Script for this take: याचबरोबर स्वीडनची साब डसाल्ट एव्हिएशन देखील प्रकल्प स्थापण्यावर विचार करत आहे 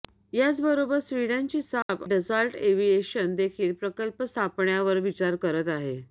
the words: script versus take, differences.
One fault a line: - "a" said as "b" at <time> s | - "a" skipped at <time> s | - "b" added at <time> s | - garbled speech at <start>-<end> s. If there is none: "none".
none